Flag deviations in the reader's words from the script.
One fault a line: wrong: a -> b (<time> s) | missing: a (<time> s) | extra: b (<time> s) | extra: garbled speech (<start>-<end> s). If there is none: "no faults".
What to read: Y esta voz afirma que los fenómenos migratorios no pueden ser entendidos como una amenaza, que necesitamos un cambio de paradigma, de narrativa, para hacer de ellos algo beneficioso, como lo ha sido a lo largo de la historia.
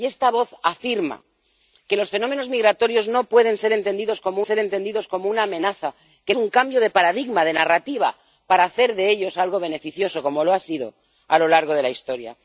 extra: ser entendidos como (4.4 s)
missing: necesitamos (6.3 s)